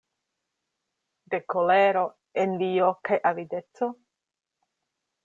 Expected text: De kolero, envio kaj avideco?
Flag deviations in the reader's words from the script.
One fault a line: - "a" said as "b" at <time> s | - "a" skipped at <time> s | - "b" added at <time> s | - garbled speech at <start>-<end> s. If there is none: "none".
none